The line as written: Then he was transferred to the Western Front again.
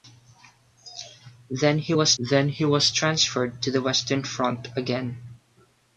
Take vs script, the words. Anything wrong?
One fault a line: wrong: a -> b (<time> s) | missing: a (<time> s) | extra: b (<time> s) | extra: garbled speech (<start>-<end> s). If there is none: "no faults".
extra: then he was (2.2 s)